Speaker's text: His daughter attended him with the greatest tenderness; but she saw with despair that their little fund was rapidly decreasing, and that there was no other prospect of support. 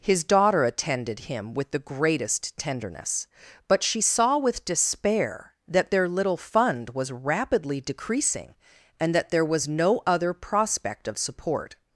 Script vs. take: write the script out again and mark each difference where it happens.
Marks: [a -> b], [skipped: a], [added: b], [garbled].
His daughter attended him with the greatest tenderness; but she saw with despair that their little fund was rapidly decreasing, and that there was no other prospect of support.